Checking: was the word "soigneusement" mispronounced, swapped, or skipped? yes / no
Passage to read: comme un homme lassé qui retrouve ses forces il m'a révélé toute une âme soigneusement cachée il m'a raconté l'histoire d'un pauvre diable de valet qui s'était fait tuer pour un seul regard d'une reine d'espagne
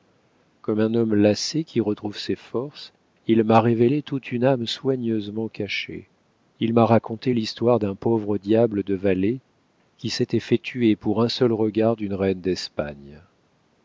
no